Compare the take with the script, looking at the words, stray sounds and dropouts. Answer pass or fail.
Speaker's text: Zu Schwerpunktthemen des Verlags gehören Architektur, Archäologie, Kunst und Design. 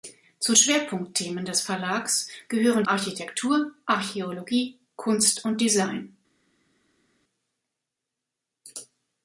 pass